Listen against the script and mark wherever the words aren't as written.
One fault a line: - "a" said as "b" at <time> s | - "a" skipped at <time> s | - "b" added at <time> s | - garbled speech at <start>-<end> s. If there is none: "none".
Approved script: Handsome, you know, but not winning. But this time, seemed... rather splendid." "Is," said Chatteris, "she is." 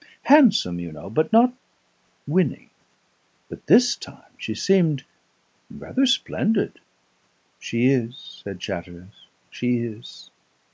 - "she" added at 4.4 s
- "She" added at 7.6 s